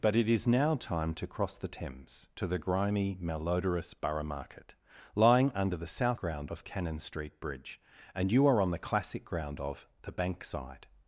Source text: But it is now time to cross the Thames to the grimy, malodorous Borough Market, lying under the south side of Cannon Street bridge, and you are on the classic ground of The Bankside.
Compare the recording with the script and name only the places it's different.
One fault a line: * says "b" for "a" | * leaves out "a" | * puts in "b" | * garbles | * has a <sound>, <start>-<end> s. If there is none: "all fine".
* says "ground" for "side"